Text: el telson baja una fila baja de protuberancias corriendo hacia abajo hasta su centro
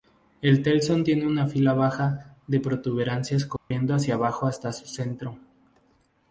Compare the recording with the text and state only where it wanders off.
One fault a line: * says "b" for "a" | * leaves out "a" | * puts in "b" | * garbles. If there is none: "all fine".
* says "tiene" for "baja"